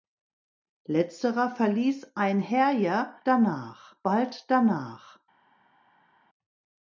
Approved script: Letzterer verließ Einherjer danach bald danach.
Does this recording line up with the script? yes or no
yes